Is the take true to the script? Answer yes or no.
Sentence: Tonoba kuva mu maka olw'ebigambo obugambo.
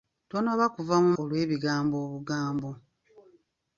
no